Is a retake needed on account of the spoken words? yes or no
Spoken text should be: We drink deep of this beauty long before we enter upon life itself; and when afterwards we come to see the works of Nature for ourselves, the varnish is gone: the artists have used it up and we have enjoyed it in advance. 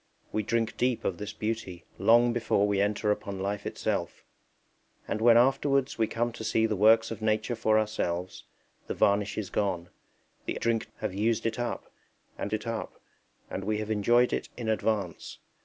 yes